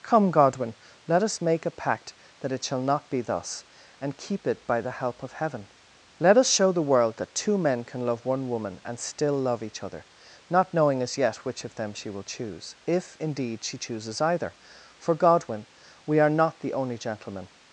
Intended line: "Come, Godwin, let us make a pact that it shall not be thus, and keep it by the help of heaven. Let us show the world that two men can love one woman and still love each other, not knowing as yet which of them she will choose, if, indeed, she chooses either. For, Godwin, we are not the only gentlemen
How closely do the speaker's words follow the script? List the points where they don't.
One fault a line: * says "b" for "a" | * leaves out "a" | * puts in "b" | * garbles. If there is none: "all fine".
all fine